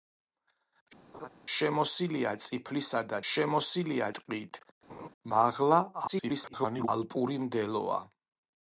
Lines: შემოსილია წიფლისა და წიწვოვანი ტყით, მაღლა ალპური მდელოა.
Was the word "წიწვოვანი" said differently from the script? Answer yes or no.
yes